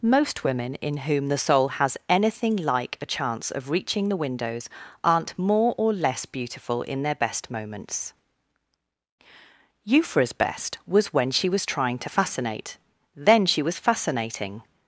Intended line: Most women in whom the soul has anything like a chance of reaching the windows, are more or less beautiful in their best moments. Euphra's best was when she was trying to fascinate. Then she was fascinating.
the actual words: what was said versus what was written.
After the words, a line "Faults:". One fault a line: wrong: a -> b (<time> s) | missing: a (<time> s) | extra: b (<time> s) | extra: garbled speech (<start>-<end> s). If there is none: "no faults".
Most women in whom the soul has anything like a chance of reaching the windows, aren't more or less beautiful in their best moments. Euphra's best was when she was trying to fascinate. Then she was fascinating.
Faults:
wrong: are -> aren't (5.0 s)